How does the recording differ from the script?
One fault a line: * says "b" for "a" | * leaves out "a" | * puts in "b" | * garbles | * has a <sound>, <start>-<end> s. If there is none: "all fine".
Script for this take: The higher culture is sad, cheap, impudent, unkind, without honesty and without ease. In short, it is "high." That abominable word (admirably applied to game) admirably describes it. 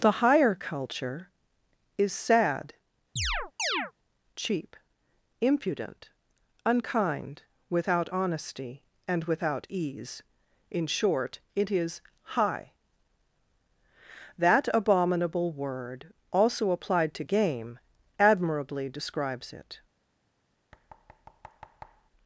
* has a chirp, 3.2-3.9 s
* says "also" for "admirably"
* has a thud, 20.7-22.1 s